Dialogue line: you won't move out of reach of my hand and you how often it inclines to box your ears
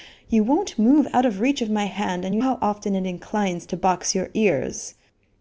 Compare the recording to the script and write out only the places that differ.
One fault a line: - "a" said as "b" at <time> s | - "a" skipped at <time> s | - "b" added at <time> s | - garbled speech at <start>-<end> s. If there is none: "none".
none